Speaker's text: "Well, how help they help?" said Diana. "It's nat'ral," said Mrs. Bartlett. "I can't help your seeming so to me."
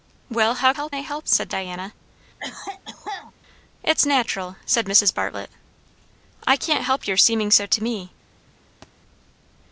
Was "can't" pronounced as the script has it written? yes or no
yes